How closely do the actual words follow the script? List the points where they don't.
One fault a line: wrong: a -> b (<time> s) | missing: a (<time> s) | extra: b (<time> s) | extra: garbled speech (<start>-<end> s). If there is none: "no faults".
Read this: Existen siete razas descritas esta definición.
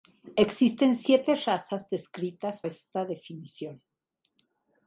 no faults